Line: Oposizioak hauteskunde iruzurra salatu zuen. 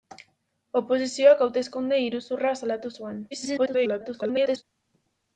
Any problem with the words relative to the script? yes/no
yes